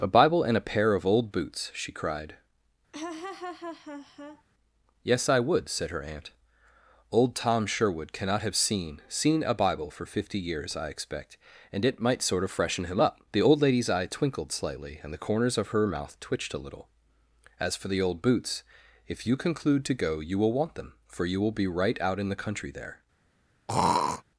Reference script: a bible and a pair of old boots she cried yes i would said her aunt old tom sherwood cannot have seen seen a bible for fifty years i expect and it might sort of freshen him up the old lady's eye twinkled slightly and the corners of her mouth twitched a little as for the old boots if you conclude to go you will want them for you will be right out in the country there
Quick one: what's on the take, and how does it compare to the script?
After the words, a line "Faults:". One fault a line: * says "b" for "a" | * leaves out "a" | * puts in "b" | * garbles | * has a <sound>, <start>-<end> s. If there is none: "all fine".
a bible and a pair of old boots she cried yes i would said her aunt old tom sherwood cannot have seen seen a bible for fifty years i expect and it might sort of freshen him up the old lady's eye twinkled slightly and the corners of her mouth twitched a little as for the old boots if you conclude to go you will want them for you will be right out in the country there
Faults:
* has a laugh, 2.9-4.4 s
* has a throat clearing, 23.7-24.2 s